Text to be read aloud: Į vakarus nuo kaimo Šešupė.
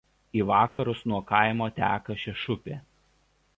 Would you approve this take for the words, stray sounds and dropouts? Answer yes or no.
no